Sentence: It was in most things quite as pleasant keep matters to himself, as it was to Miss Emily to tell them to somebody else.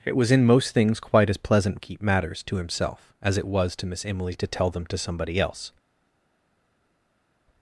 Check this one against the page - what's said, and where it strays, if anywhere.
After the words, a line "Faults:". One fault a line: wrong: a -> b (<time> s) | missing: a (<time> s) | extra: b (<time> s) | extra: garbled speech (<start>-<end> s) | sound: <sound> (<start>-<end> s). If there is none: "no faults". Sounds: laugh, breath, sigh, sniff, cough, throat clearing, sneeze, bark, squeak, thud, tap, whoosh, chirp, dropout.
It was in most things quite as pleasant keep matters to himself, as it was to Miss Emily to tell them to somebody else.
Faults:
no faults